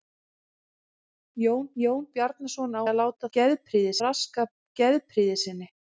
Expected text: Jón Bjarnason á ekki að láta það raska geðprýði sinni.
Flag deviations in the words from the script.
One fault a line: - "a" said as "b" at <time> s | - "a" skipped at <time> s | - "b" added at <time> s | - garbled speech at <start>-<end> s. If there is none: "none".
- "jón" added at 1.8 s
- "ekki" skipped at 2.8 s
- "það" said as "geðprýði" at 3.4 s